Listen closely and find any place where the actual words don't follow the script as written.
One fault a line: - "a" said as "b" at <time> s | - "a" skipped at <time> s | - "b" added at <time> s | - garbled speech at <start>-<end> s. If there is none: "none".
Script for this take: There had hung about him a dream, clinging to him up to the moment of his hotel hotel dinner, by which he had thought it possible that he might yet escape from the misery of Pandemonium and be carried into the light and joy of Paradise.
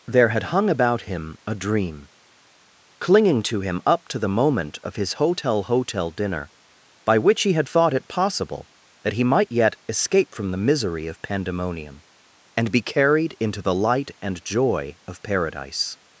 none